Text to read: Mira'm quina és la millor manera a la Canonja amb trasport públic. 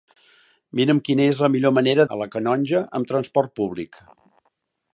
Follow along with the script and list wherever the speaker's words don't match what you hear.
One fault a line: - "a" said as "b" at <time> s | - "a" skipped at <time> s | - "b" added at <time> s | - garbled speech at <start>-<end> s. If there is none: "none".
none